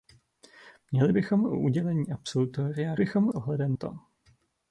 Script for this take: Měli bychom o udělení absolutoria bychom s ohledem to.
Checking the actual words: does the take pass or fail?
pass